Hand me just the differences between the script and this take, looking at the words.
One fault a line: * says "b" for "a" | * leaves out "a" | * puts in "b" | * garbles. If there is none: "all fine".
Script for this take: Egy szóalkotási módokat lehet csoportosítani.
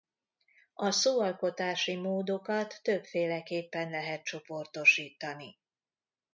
* says "A" for "Egy"
* puts in "többféleképpen"